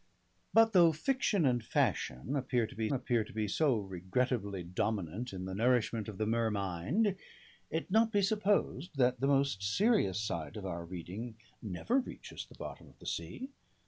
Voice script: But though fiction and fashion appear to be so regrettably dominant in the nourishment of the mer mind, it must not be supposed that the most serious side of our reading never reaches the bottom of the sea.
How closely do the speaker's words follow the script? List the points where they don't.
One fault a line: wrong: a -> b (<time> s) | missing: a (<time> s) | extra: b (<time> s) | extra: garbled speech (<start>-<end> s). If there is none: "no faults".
extra: appear to be (2.9 s)
missing: must (7.9 s)